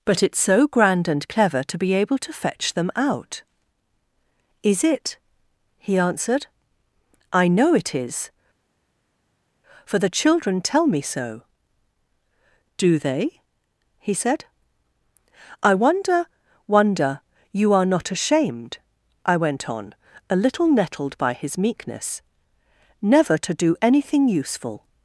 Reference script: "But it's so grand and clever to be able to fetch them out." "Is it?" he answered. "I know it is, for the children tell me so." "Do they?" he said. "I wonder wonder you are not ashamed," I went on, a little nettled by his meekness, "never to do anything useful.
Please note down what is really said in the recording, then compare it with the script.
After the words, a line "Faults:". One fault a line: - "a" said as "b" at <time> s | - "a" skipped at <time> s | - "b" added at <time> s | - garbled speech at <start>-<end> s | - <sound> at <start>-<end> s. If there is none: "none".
"But it's so grand and clever to be able to fetch them out." "Is it?" he answered. "I know it is, for the children tell me so." "Do they?" he said. "I wonder wonder you are not ashamed," I went on, a little nettled by his meekness, "never to do anything useful.
Faults:
none